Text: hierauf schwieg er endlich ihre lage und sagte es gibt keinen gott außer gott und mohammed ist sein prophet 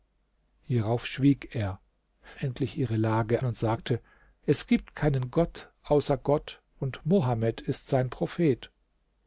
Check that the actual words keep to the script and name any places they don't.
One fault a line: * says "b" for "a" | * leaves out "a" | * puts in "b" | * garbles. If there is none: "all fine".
all fine